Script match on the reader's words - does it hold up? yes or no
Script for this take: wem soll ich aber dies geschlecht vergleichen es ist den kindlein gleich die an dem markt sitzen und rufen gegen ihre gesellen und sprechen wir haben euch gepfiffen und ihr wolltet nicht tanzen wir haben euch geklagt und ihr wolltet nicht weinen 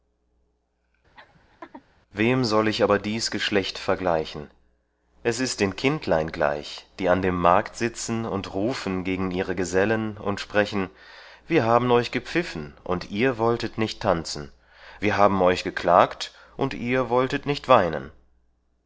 yes